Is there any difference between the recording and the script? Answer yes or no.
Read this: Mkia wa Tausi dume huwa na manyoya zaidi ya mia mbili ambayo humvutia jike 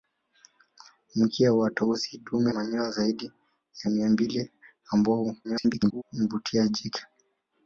yes